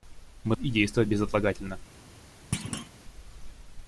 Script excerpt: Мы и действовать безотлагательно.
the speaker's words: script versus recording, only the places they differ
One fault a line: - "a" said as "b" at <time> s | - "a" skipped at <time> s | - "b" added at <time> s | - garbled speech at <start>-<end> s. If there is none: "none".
none